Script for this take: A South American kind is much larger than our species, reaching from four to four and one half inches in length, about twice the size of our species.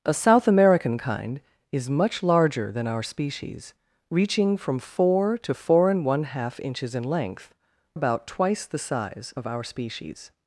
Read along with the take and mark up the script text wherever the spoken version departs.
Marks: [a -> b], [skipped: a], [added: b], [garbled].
A South American kind is much larger than our species, reaching from four to four and one half inches in length, about twice the size of our species.